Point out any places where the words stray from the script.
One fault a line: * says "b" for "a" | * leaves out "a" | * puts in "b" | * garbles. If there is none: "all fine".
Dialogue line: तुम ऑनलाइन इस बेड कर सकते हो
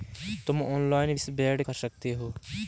all fine